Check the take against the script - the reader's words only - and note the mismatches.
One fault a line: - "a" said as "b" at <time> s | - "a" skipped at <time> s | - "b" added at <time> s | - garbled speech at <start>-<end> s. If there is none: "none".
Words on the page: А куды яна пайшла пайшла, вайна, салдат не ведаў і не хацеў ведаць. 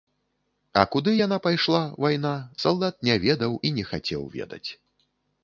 - "пайшла" skipped at 1.8 s